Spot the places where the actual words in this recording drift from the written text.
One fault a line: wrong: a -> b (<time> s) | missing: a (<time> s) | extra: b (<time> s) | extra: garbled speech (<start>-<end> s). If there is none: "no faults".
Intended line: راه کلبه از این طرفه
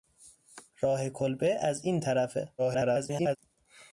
extra: garbled speech (2.6-3.4 s)